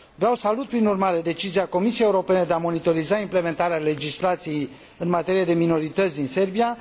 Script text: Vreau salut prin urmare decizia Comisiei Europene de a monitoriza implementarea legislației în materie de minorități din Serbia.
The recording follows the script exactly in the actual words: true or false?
true